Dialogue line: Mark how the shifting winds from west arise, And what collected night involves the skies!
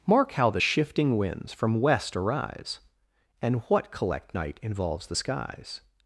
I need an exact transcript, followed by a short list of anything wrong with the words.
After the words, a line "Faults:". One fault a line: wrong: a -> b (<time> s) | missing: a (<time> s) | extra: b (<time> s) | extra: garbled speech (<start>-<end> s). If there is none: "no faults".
Mark how the shifting winds from west arise, And what collect night involves the skies!
Faults:
wrong: collected -> collect (3.9 s)